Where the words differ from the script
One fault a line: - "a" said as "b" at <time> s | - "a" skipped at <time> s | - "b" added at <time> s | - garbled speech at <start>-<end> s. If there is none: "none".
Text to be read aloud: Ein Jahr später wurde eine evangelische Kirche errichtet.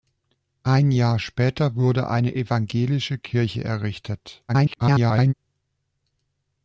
- garbled speech at 4.5-5.3 s